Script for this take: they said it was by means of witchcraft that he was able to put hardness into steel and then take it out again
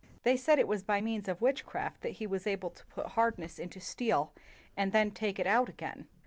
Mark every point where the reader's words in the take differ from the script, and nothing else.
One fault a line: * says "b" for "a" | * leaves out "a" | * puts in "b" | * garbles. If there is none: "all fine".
all fine